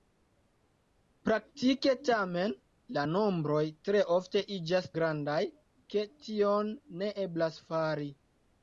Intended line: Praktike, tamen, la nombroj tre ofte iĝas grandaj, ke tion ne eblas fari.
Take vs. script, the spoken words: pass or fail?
pass